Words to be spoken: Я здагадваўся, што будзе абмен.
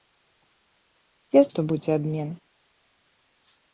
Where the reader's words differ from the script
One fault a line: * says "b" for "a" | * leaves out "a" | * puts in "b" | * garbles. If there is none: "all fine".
* leaves out "здагадваўся"